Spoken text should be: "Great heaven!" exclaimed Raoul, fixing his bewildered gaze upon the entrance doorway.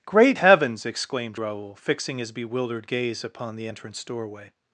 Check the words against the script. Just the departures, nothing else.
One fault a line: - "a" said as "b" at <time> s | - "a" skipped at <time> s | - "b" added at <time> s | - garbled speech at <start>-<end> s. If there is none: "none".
- "heaven" said as "heavens" at 0.4 s